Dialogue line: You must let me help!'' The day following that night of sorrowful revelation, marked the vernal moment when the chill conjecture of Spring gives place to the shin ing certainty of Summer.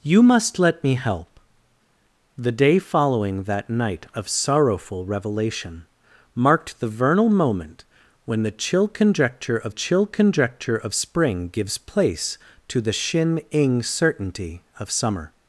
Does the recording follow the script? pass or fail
fail